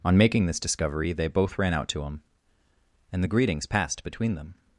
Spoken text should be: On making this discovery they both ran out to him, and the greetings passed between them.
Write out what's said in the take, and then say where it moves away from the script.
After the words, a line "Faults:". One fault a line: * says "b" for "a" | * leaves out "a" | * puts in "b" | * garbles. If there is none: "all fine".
On making this discovery they both ran out to him, and the greetings passed between them.
Faults:
all fine